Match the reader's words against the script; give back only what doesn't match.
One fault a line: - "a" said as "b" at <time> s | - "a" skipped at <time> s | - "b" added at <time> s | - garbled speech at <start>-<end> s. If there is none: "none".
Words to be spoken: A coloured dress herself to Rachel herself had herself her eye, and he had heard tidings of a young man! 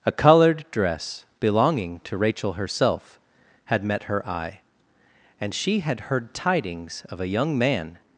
- "herself" said as "belonging" at 1.4 s
- "herself" said as "met" at 3.8 s
- "he" said as "she" at 5.5 s